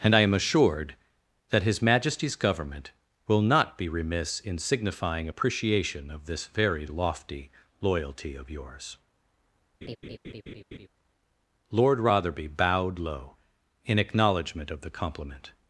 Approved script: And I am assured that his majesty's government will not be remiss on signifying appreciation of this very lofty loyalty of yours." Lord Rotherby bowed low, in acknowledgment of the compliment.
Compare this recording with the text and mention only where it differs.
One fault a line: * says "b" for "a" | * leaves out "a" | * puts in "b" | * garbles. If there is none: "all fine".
* says "in" for "on"